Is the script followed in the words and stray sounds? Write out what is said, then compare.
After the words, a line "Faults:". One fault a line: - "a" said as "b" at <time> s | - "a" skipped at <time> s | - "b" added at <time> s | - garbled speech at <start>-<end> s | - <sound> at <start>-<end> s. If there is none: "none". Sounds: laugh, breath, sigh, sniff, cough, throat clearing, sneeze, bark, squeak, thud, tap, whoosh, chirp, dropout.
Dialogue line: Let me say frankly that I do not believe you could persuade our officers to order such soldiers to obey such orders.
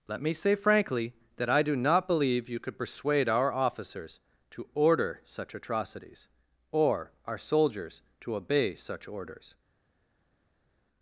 Let me say frankly that I do not believe you could persuade our officers to order such atrocities, or our soldiers to obey such orders.
Faults:
- "atrocities or our" added at 5.5 s